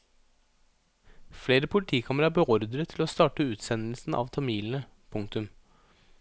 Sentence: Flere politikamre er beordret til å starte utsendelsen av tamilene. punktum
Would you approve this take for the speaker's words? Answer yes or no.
yes